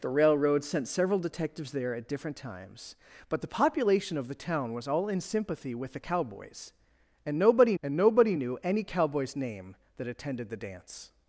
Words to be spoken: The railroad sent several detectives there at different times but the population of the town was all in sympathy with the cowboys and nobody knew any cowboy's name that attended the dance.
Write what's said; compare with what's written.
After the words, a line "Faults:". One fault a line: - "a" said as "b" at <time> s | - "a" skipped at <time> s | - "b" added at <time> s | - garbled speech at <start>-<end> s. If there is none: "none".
The railroad sent several detectives there at different times but the population of the town was all in sympathy with the cowboys and nobody and nobody knew any cowboy's name that attended the dance.
Faults:
- "and nobody" added at 7.8 s